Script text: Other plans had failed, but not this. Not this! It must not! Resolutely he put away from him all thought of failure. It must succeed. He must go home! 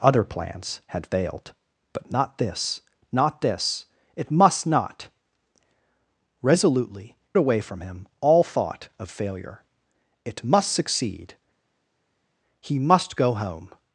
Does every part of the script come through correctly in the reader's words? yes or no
no